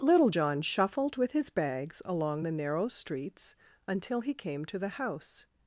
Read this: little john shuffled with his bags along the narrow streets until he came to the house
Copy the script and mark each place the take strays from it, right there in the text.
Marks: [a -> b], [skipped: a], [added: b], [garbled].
little john shuffled with his bags along the narrow streets until he came to the house